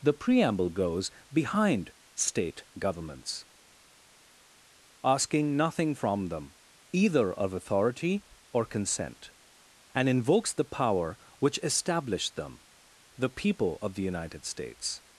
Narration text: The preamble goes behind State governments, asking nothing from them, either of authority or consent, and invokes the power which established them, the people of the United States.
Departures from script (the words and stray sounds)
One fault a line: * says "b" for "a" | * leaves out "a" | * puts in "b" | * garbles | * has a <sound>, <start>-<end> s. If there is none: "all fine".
all fine